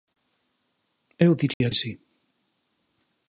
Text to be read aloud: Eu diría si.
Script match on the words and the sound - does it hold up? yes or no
no